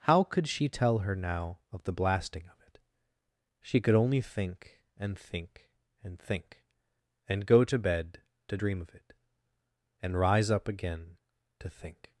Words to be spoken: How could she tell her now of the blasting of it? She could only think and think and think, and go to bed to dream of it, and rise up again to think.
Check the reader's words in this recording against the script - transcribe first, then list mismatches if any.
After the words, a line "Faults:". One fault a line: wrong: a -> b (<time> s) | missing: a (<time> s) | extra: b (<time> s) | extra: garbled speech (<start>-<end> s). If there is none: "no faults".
How could she tell her now of the blasting of it? She could only think and think and think, and go to bed to dream of it, and rise up again to think.
Faults:
no faults